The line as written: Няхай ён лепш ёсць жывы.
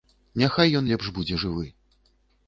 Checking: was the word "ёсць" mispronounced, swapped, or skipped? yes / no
yes